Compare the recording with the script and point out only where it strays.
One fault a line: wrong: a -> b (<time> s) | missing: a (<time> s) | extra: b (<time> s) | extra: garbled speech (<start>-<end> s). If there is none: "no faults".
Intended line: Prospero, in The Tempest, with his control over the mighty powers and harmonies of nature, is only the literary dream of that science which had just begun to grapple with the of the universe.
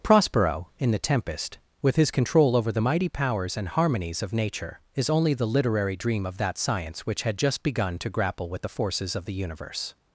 extra: forces (8.7 s)